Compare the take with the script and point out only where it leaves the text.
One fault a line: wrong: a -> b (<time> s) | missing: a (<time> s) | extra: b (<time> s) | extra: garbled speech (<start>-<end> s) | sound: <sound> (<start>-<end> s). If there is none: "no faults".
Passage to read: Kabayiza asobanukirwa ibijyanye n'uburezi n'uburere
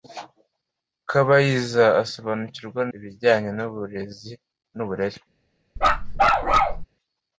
sound: bark (5.8-6.9 s)